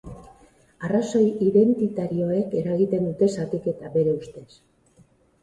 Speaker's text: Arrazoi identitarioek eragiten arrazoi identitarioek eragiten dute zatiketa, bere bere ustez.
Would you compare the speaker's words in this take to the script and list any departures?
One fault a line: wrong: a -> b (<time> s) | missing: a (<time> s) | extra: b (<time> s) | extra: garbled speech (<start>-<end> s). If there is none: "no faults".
missing: arrazoi identitarioek eragiten (3.1 s)
missing: bere (4.2 s)